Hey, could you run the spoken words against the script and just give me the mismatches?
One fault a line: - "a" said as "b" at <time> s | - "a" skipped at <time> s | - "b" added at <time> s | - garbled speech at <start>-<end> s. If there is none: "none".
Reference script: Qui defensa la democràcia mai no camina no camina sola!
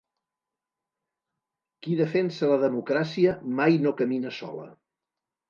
- "no camina" skipped at 4.3 s